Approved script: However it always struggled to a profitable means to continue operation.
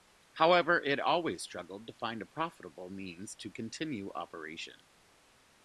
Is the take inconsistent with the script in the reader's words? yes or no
yes